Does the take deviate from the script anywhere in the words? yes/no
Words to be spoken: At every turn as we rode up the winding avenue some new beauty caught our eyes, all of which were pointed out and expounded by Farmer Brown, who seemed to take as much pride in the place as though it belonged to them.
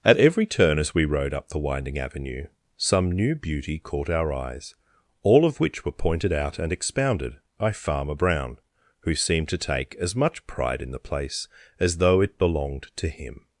yes